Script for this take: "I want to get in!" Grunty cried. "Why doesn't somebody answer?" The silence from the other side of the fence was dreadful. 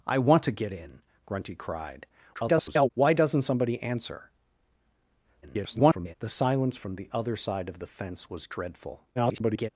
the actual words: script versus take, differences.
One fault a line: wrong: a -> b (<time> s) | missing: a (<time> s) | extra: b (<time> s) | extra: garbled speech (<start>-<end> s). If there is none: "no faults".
extra: garbled speech (2.3-2.9 s)
extra: garbled speech (5.4-6.2 s)
extra: garbled speech (9.2-9.7 s)